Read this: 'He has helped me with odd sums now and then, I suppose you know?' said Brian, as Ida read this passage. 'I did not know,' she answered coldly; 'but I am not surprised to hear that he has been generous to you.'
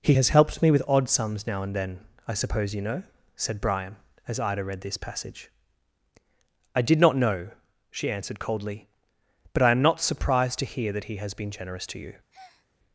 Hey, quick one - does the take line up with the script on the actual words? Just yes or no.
yes